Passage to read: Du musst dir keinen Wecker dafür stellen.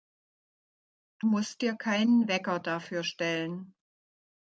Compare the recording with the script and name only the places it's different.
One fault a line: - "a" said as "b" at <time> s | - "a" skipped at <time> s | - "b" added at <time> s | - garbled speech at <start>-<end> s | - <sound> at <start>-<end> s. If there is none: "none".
none